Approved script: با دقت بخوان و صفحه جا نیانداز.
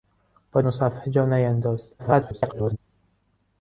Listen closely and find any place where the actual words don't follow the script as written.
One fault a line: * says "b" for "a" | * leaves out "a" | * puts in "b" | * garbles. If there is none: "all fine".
* leaves out "دقت بخوان"
* garbles